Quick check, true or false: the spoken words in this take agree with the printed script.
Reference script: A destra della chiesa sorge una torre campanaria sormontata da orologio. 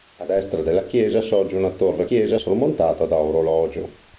false